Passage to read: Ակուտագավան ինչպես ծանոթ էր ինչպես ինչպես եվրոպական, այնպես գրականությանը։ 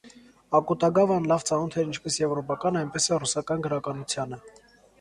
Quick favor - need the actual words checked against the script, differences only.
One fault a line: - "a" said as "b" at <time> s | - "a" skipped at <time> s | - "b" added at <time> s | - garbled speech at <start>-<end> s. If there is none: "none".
- "ինչպես" said as "լավ" at 1.3 s
- "ինչպես" skipped at 2.2 s
- "էլ ռուսական" added at 3.1 s